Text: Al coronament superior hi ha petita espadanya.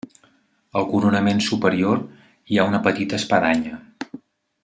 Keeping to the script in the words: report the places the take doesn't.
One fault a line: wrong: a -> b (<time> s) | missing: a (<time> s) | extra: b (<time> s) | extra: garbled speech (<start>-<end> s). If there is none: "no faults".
extra: una (2.7 s)